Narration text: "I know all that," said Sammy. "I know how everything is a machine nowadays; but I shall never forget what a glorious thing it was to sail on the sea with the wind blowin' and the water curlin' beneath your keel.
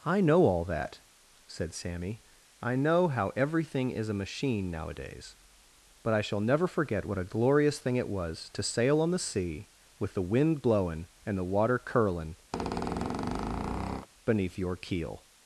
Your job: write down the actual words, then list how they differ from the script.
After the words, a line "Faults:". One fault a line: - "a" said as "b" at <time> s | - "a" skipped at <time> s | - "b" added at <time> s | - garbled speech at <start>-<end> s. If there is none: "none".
"I know all that," said Sammy. "I know how everything is a machine nowadays; but I shall never forget what a glorious thing it was to sail on the sea with the wind blowin' and the water curlin' beneath your keel.
Faults:
none